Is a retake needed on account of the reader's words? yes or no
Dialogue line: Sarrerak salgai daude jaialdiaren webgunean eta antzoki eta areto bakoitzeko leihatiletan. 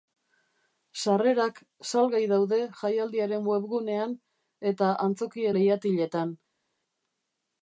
yes